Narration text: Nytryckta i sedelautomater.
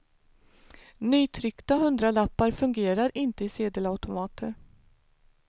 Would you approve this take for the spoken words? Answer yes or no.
no